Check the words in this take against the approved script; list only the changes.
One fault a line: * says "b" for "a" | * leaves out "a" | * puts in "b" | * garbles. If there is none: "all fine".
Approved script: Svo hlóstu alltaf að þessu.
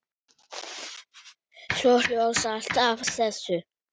all fine